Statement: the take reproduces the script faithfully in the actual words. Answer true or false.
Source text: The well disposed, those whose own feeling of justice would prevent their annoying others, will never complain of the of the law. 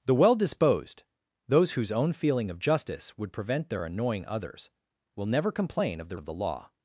true